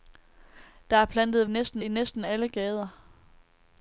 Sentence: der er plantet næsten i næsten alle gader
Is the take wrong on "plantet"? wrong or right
right